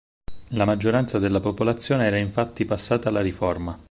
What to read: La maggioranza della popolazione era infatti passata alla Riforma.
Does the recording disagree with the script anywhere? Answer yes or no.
no